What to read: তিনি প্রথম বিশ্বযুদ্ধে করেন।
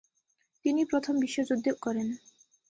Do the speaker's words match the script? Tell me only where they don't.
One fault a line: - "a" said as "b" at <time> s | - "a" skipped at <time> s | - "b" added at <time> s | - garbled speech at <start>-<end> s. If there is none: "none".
none